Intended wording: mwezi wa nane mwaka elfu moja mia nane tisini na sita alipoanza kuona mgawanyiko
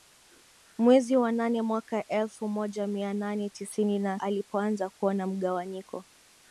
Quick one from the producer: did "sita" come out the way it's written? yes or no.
no